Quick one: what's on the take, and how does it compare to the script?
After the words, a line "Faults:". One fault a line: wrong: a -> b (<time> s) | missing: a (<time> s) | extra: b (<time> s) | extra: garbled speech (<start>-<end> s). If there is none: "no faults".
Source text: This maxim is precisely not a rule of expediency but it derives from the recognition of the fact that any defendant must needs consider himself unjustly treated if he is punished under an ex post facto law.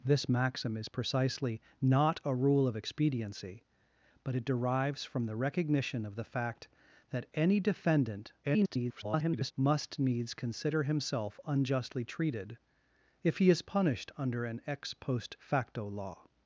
This maxim is precisely not a rule of expediency but it derives from the recognition of the fact that any defendant [garbled] must needs consider himself unjustly treated if he is punished under an ex post facto law.
Faults:
extra: garbled speech (8.4-9.5 s)